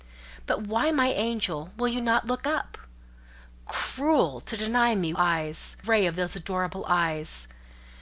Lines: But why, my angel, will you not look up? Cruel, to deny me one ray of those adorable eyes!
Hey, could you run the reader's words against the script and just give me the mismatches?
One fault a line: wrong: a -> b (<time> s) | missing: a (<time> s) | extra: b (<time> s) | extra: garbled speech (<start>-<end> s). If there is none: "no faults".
wrong: one -> eyes (5.2 s)